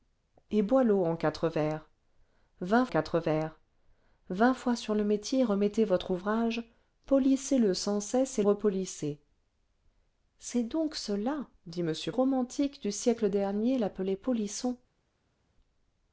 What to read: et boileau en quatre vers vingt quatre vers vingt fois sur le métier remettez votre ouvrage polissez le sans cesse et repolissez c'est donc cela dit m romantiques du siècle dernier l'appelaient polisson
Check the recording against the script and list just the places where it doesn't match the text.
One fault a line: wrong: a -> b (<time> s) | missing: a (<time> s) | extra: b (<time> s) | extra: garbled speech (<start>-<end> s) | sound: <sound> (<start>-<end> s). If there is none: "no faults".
no faults